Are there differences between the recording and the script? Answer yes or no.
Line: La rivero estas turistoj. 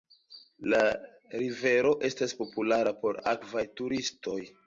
yes